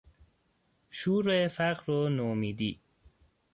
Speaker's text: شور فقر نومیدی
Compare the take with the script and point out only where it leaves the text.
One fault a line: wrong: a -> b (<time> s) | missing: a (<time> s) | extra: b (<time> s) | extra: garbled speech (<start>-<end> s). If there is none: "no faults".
extra: و (1.9 s)